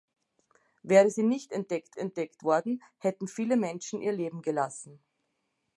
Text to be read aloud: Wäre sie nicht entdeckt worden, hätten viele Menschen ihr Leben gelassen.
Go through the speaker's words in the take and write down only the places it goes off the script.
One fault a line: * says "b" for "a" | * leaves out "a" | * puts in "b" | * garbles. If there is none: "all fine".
* puts in "entdeckt"